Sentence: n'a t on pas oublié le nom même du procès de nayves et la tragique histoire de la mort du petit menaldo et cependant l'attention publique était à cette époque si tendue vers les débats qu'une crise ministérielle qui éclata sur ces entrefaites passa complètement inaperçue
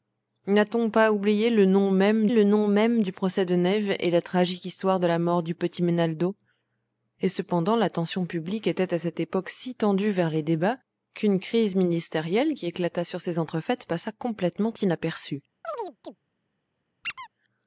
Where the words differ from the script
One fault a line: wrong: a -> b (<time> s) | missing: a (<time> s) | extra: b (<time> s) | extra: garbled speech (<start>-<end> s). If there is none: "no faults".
extra: le nom même (2.3 s)